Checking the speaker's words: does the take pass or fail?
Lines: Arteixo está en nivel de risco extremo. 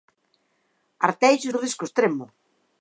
fail